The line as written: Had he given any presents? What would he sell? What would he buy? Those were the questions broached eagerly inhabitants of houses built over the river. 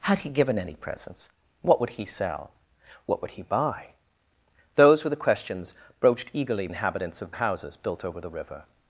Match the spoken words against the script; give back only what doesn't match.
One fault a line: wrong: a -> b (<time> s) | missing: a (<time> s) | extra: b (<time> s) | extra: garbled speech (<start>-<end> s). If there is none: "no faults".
no faults